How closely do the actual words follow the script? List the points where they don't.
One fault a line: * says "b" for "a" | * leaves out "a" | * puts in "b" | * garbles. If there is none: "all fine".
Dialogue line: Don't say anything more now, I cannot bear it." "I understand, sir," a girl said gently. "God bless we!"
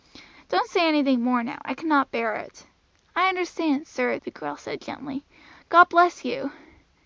* says "the" for "a"
* says "you" for "we"